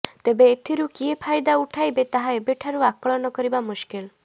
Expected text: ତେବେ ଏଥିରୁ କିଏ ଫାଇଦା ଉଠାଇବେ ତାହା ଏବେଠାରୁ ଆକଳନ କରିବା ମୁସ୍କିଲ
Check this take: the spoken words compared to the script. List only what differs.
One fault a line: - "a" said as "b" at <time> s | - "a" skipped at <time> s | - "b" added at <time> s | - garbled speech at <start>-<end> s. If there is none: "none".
none